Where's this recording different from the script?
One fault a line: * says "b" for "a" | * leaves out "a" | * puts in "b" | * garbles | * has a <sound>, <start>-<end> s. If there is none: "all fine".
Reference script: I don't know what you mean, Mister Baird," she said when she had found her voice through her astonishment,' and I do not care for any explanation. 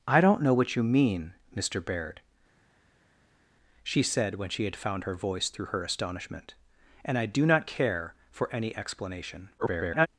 * garbles